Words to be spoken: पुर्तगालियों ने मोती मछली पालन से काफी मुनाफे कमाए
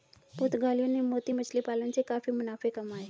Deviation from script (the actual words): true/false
false